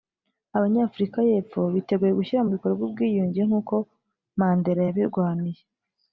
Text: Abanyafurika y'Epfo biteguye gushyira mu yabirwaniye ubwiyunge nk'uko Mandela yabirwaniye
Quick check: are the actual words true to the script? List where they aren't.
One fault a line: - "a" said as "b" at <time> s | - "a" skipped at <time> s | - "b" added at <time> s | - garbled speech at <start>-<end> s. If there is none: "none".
- "yabirwaniye" said as "bikorwa" at 2.5 s